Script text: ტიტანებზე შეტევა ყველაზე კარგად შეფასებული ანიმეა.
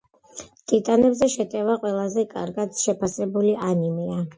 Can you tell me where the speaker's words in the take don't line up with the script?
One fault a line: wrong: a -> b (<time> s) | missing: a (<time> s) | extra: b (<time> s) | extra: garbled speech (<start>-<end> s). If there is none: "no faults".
no faults